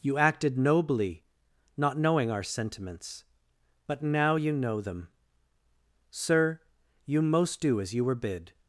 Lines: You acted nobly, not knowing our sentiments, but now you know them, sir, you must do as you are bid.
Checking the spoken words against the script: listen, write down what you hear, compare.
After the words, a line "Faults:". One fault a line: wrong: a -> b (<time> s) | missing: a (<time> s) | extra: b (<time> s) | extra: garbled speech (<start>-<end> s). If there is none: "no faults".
You acted nobly, not knowing our sentiments, but now you know them, sir, you most do as you were bid.
Faults:
wrong: must -> most (7.2 s)
wrong: are -> were (8.0 s)